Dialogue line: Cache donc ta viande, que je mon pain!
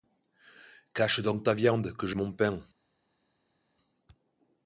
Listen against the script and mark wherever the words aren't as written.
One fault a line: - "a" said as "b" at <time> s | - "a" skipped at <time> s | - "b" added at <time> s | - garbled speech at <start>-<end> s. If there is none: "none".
none